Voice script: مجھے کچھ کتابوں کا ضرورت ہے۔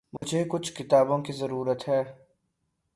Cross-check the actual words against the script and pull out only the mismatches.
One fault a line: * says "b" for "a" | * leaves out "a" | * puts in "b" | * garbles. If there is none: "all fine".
* says "کی" for "کا"